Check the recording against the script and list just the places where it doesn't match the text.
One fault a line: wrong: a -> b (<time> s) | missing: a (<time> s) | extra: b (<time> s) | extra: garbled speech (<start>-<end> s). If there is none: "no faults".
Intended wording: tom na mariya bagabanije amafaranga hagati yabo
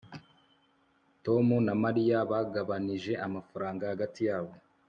no faults